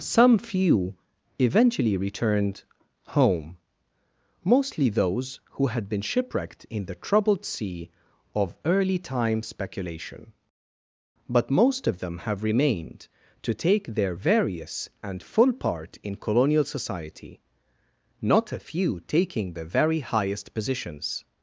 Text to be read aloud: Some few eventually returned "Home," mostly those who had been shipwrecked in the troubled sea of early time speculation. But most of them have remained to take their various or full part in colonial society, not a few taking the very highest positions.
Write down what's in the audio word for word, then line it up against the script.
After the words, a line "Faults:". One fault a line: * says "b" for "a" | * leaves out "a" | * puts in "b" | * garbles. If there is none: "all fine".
Some few eventually returned "Home," mostly those who had been shipwrecked in the troubled sea of early time speculation. But most of them have remained to take their various and full part in colonial society, not a few taking the very highest positions.
Faults:
* says "and" for "or"